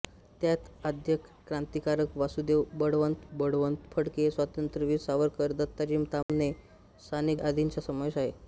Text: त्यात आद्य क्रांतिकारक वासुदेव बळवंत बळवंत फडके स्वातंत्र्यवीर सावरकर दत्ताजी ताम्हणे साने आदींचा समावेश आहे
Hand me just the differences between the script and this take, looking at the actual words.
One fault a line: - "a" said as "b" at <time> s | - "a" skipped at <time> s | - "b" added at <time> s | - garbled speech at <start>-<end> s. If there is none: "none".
none